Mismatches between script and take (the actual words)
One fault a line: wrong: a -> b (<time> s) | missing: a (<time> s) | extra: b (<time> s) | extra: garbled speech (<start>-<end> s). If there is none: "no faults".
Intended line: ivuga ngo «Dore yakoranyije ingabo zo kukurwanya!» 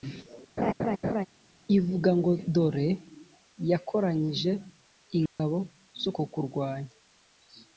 no faults